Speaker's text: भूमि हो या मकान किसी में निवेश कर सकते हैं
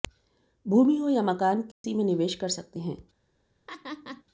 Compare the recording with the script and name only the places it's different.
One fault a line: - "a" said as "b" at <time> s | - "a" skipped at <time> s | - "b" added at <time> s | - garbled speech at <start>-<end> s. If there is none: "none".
none